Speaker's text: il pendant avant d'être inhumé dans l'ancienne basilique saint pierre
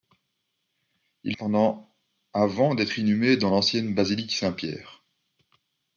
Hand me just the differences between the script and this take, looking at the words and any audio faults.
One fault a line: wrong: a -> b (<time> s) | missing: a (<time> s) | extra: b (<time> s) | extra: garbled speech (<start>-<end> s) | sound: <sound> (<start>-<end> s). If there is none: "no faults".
no faults